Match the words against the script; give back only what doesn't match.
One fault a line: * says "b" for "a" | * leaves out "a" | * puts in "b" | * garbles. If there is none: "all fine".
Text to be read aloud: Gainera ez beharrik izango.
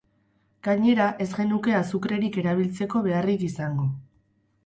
* puts in "genuke azukrerik erabiltzeko"